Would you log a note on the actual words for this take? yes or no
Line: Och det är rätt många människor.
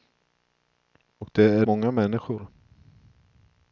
yes